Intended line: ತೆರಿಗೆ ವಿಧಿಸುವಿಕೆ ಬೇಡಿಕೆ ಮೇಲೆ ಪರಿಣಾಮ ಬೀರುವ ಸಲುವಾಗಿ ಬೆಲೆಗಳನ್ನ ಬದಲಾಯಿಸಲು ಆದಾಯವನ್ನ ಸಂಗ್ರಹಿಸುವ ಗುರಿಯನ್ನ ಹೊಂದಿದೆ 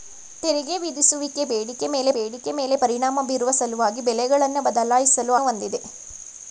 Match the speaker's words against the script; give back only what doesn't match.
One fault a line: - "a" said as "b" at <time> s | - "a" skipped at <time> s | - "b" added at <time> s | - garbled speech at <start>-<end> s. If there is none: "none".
- "ಬೇಡಿಕೆ ಮೇಲೆ" added at 2.1 s
- "ಆದಾಯವನ್ನ ಸಂಗ್ರಹಿಸುವ ಗುರಿಯನ್ನ" skipped at 5.3 s